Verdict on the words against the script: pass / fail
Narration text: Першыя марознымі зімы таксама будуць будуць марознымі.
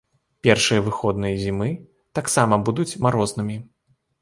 fail